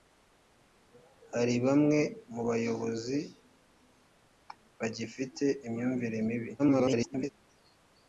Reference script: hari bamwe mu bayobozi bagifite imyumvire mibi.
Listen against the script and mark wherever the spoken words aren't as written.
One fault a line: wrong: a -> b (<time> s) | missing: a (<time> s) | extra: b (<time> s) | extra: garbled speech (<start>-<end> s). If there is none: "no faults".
extra: garbled speech (6.6-7.3 s)